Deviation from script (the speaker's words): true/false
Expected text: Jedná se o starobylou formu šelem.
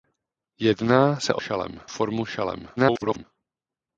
true